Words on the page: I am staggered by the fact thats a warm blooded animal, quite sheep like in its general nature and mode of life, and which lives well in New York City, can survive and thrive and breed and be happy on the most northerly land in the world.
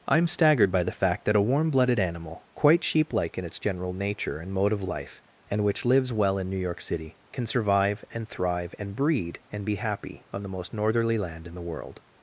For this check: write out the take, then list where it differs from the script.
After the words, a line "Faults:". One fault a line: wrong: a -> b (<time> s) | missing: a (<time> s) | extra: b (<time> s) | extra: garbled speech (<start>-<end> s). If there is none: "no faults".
I am staggered by the fact that a warm blooded animal, quite sheep like in its general nature and mode of life, and which lives well in New York City, can survive and thrive and breed and be happy on the most northerly land in the world.
Faults:
wrong: thats -> that (1.2 s)